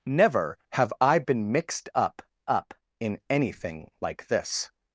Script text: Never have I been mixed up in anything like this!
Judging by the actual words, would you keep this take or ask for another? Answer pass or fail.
fail